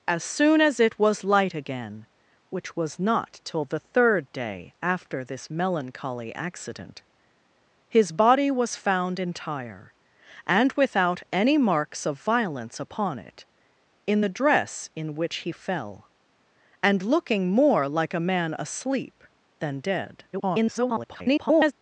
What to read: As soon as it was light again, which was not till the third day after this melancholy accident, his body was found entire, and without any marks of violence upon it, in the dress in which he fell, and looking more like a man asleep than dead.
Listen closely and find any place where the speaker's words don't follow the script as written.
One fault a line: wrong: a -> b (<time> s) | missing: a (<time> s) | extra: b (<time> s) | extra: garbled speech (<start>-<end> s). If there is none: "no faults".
extra: garbled speech (20.3-21.7 s)